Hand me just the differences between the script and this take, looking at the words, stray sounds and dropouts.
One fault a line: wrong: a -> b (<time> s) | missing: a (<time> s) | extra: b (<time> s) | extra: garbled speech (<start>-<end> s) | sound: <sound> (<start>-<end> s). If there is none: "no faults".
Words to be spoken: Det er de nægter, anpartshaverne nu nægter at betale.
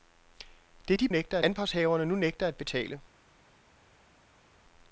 no faults